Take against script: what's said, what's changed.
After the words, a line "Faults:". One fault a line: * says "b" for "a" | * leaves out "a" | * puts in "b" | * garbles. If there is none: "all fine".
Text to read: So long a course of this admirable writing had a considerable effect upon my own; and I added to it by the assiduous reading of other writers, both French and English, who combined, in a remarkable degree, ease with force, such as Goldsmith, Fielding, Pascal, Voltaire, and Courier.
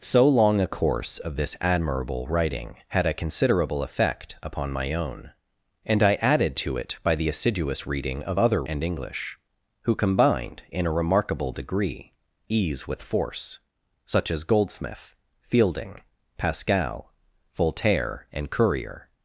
So long a course of this admirable writing had a considerable effect upon my own; and I added to it by the assiduous reading of other and English, who combined, in a remarkable degree, ease with force, such as Goldsmith, Fielding, Pascal, Voltaire, and Courier.
Faults:
* leaves out "writers both French"